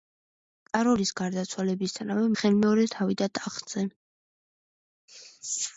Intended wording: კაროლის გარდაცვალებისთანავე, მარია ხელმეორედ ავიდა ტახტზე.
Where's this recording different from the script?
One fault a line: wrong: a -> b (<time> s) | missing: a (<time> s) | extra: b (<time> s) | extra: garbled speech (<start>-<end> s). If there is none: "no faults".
missing: მარია (2.2 s)